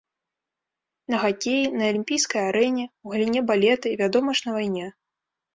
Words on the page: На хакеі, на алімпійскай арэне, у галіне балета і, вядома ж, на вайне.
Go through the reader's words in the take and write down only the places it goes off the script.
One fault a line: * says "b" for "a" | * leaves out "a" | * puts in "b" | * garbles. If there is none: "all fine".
all fine